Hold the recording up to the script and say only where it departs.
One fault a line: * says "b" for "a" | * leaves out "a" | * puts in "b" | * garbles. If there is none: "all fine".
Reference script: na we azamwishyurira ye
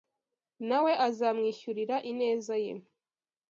* puts in "ineza"